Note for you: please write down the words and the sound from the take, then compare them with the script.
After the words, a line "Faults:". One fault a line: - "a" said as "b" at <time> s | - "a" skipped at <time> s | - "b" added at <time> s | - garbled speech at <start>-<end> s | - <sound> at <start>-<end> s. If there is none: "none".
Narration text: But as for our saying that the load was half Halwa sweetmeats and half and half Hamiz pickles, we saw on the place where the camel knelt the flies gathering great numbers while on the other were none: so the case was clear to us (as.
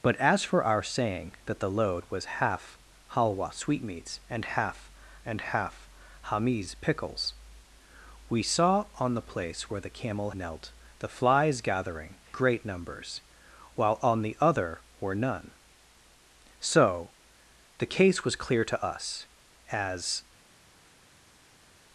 But as for our saying that the load was half Halwa sweetmeats and half and half Hamiz pickles, we saw on the place where the camel knelt the flies gathering great numbers while on the other were none: so the case was clear to us (as.
Faults:
none